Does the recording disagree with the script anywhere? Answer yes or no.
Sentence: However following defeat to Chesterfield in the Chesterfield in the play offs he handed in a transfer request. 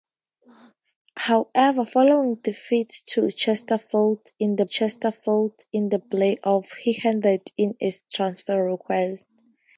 no